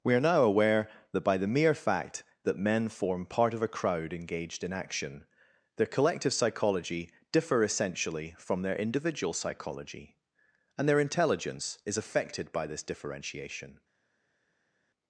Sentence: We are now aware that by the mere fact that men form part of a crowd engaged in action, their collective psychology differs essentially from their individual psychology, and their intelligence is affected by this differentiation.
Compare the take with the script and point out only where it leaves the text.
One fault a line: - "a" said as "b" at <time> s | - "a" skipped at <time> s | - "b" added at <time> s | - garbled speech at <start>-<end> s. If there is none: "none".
- "differs" said as "differ" at 7.3 s